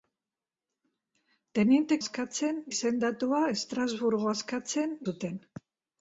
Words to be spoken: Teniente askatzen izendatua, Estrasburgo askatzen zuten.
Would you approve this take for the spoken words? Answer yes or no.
yes